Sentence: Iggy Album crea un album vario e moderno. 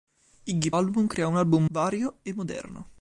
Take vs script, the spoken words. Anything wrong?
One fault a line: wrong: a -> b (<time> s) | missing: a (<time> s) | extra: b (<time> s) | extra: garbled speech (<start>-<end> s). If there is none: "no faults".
no faults